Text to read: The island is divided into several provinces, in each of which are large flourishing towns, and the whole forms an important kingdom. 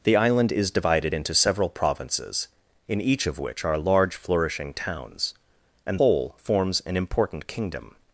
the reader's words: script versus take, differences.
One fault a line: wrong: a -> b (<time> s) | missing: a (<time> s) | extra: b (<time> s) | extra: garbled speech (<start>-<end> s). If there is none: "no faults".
missing: the (6.0 s)